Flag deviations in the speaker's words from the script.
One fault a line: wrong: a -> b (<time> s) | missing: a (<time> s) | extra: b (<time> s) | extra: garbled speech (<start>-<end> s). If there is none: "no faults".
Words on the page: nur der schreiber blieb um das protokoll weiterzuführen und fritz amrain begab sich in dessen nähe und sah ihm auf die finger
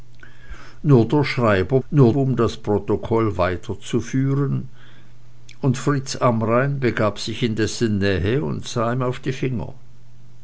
wrong: blieb -> nur (1.9 s)